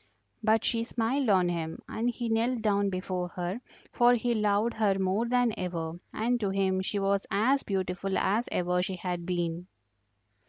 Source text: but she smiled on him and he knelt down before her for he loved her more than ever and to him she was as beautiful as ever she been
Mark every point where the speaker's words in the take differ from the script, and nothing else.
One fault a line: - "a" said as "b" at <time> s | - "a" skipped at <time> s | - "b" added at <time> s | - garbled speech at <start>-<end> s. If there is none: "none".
- "had" added at 8.9 s